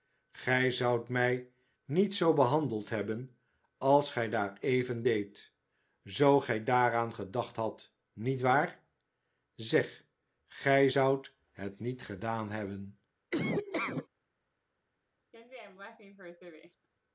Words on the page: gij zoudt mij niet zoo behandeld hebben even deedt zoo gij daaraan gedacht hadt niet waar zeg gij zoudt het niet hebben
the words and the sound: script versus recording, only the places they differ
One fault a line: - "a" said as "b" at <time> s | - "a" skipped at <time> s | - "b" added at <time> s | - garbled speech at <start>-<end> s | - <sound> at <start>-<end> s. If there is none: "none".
- "als gij daar" added at 3.8 s
- "gedaan" added at 12.0 s
- laugh at 13.3-14.1 s
- laugh at 15.3-16.9 s